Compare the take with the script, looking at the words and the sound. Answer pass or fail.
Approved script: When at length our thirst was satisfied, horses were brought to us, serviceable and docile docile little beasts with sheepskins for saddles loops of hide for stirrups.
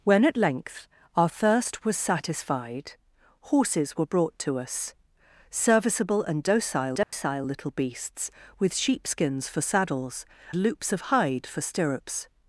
fail